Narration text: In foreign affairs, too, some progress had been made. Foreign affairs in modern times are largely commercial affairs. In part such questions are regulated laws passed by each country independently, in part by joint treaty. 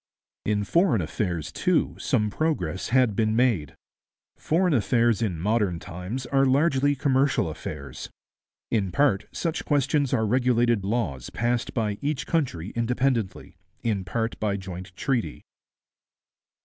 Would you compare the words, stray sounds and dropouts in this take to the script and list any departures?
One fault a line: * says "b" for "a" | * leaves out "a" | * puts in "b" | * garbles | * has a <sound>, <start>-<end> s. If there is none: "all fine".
all fine